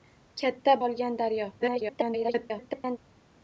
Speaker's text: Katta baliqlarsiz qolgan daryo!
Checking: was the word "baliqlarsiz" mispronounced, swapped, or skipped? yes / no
yes